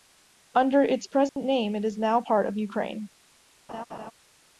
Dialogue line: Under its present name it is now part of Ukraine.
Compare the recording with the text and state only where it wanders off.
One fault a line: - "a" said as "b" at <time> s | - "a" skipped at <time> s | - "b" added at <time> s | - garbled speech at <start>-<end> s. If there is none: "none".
none